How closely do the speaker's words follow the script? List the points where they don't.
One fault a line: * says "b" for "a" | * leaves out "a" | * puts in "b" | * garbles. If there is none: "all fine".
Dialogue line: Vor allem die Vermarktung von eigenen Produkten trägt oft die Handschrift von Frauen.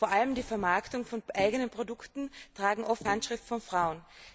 * leaves out "die"